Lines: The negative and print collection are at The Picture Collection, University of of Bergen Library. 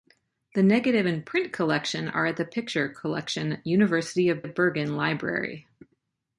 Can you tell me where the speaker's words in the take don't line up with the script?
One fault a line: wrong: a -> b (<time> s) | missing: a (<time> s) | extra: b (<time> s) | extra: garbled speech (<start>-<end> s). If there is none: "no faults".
no faults